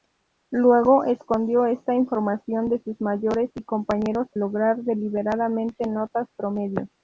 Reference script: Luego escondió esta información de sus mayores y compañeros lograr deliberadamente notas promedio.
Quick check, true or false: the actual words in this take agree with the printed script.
true